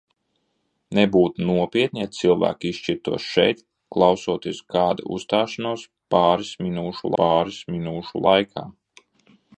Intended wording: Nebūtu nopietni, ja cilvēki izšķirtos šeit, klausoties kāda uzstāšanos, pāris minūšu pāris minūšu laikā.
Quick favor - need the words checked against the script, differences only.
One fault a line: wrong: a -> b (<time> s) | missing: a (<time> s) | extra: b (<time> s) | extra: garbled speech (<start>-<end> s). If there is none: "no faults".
no faults